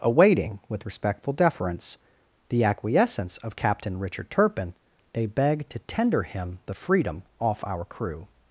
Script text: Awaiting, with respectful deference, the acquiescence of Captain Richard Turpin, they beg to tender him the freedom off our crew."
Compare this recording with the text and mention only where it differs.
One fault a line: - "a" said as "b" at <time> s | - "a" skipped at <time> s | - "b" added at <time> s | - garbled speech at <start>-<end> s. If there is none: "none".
none